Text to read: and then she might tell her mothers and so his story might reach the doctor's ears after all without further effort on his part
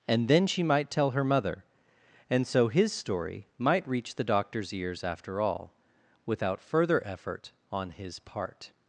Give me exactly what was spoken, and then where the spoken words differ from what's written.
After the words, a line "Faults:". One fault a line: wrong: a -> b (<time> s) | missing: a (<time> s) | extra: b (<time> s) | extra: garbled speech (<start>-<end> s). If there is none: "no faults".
and then she might tell her mother and so his story might reach the doctor's ears after all without further effort on his part
Faults:
wrong: mothers -> mother (1.2 s)